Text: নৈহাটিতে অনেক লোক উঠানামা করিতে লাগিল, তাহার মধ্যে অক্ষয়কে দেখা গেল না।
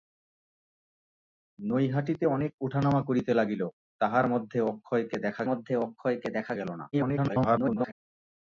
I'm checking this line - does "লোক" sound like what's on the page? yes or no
no